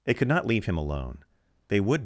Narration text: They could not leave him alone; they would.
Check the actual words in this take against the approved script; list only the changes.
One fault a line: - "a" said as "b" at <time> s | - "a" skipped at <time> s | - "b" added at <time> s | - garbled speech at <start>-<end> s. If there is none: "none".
none